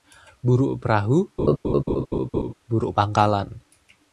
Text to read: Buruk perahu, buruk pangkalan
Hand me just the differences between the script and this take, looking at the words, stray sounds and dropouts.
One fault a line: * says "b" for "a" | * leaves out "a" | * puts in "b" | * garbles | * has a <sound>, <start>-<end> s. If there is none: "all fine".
* has a laugh, 1.4-2.5 s